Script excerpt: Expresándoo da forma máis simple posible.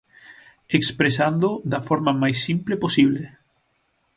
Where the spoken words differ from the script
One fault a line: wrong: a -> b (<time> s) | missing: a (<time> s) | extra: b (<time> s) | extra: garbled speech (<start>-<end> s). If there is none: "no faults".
no faults